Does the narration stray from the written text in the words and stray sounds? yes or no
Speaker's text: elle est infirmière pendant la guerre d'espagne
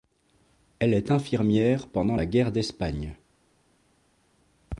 no